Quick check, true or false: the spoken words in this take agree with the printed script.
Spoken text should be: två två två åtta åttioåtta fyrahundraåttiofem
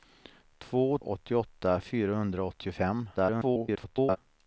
false